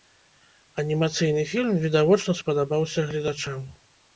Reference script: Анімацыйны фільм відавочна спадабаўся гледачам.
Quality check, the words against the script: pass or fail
pass